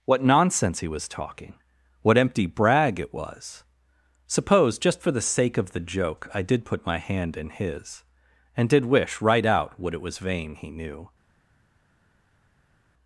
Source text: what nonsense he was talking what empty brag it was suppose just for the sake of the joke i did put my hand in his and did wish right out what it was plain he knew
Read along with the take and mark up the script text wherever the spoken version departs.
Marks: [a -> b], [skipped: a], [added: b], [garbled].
what nonsense he was talking what empty brag it was suppose just for the sake of the joke i did put my hand in his and did wish right out what it was [plain -> vain] he knew